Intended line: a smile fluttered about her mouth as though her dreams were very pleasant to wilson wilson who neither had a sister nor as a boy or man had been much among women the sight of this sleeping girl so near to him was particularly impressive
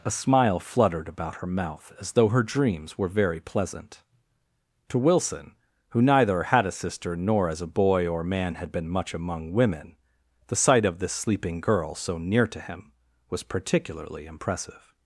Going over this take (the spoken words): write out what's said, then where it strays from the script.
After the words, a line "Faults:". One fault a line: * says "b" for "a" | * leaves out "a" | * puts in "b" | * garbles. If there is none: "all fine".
a smile fluttered about her mouth as though her dreams were very pleasant to wilson who neither had a sister nor as a boy or man had been much among women the sight of this sleeping girl so near to him was particularly impressive
Faults:
* leaves out "wilson"